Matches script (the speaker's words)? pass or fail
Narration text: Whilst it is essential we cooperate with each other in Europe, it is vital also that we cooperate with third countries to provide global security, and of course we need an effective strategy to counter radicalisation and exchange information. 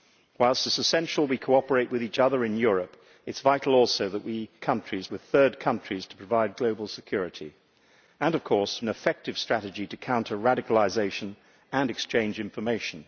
fail